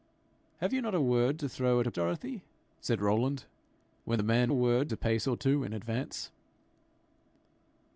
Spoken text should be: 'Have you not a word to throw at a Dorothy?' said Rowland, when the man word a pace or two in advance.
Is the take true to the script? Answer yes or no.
yes